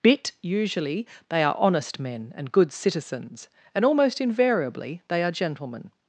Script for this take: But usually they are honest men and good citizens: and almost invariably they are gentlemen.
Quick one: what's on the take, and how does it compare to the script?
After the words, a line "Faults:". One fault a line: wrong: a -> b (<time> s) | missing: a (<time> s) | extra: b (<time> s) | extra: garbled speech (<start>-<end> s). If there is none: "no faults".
Bit usually they are honest men and good citizens: and almost invariably they are gentlemen.
Faults:
wrong: But -> Bit (0.0 s)